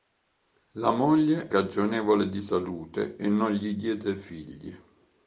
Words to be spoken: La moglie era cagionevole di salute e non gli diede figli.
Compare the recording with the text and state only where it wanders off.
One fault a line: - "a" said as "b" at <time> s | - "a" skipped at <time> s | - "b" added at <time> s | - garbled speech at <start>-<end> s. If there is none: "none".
- "era" skipped at 1.5 s